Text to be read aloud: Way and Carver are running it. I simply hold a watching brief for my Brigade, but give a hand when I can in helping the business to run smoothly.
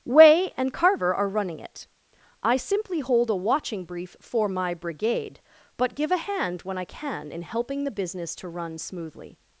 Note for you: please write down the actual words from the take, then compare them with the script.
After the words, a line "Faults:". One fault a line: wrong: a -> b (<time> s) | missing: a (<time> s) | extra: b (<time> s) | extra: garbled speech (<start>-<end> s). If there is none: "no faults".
Way and Carver are running it. I simply hold a watching brief for my Brigade, but give a hand when I can in helping the business to run smoothly.
Faults:
no faults